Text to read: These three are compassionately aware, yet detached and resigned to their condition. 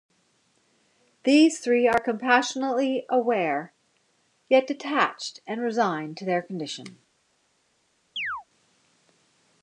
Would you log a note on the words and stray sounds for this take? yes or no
yes